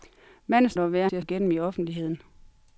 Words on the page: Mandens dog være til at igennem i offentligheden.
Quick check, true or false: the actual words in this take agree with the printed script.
true